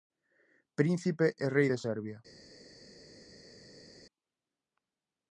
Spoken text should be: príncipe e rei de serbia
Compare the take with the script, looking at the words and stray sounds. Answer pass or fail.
pass